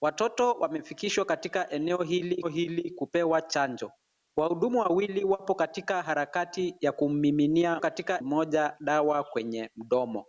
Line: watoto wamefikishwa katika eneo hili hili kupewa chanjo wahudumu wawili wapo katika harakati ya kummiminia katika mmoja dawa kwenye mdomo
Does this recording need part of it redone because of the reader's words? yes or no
no